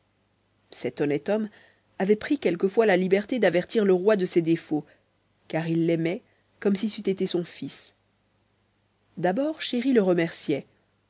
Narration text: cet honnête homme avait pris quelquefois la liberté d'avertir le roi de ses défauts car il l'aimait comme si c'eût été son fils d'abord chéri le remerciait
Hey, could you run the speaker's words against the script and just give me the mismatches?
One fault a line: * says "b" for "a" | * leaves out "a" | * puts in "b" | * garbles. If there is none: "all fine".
all fine